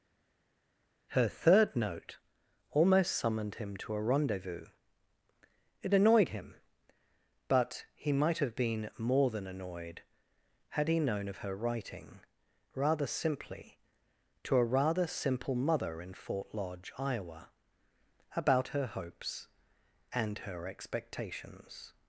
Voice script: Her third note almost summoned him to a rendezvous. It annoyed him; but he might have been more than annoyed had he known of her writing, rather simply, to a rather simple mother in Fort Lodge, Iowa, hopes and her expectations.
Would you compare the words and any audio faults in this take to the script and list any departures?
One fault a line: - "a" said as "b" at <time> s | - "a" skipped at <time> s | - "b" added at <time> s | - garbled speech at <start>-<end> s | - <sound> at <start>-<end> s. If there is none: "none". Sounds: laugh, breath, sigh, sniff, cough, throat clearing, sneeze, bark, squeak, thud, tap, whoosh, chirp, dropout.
- "about her" added at 18.3 s